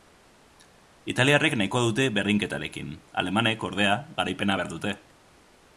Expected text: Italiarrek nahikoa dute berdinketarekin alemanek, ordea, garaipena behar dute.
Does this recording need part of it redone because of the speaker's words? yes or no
no